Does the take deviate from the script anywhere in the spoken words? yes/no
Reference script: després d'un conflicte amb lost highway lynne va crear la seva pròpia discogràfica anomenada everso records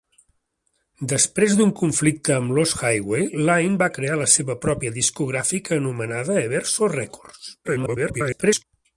yes